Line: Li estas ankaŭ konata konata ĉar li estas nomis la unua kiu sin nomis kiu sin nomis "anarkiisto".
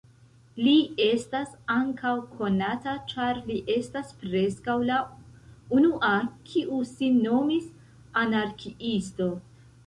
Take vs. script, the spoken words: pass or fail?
fail